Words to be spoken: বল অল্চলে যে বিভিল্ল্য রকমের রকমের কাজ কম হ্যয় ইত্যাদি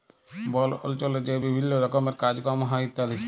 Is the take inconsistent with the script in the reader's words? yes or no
yes